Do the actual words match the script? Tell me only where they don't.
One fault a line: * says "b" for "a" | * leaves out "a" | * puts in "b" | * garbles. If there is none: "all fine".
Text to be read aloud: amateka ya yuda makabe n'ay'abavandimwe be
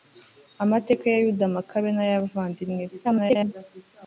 * garbles